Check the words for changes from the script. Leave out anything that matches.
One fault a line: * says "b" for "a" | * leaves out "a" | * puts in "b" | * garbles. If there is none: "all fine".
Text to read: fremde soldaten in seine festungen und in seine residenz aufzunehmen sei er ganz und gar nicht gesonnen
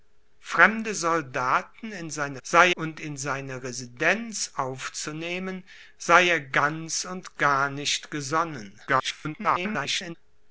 * says "sei" for "festungen"
* garbles